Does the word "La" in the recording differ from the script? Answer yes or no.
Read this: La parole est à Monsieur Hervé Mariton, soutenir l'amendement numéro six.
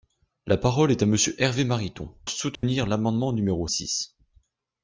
no